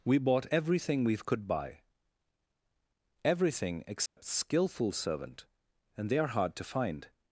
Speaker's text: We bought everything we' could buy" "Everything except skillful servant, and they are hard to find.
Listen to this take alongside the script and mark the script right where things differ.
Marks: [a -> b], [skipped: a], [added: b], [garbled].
We bought everything we' could buy" "Everything except skillful servant, and they are hard to find.